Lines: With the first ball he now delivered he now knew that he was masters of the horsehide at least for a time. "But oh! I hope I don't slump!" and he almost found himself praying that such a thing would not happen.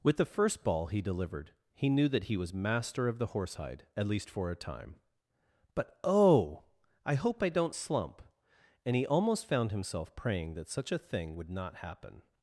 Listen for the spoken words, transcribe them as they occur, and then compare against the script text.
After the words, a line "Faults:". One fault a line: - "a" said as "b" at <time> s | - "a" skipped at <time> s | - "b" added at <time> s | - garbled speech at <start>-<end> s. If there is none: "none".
With the first ball he delivered he knew that he was master of the horsehide at least for a time. "But oh! I hope I don't slump!" and he almost found himself praying that such a thing would not happen.
Faults:
- "now" skipped at 1.0 s
- "now" skipped at 1.9 s
- "masters" said as "master" at 2.5 s